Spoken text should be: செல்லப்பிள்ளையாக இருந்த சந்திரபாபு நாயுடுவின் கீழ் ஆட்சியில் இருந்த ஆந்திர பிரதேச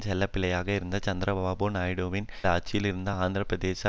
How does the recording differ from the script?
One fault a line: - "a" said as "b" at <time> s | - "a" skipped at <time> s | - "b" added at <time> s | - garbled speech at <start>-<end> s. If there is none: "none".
- "கீழ்" skipped at 2.3 s